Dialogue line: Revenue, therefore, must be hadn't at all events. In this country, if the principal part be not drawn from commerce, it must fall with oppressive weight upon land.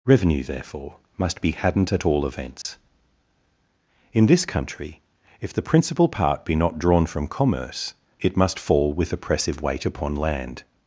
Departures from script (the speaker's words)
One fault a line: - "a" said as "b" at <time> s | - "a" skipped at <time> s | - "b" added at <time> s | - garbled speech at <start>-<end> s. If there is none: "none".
none